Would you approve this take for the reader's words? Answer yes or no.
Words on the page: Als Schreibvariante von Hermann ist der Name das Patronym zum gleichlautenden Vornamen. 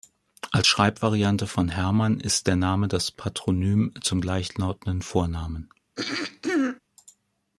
yes